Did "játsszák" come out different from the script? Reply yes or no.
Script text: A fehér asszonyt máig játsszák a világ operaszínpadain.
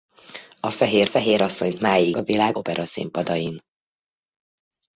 yes